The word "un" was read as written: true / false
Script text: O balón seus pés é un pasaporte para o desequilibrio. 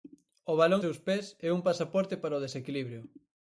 true